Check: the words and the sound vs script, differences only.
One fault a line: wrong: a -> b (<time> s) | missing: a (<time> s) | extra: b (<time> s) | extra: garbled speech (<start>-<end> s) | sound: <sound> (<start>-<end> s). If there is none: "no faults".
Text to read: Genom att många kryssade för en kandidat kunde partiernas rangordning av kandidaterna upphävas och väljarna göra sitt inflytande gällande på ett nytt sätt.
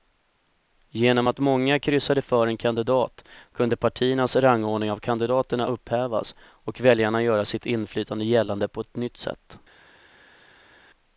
no faults